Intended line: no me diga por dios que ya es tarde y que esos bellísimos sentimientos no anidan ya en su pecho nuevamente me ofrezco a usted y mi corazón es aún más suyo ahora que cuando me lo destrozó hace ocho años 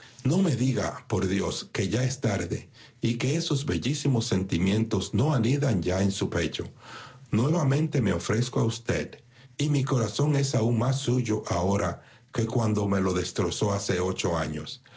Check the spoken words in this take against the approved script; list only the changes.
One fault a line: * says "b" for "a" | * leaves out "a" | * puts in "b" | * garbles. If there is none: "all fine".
all fine